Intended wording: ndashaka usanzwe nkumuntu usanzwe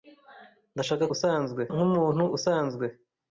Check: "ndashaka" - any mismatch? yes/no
no